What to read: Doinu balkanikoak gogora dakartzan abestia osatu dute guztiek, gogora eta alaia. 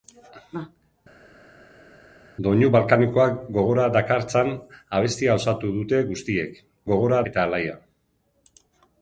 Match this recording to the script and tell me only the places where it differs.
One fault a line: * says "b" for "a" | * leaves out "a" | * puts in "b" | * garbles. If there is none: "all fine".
all fine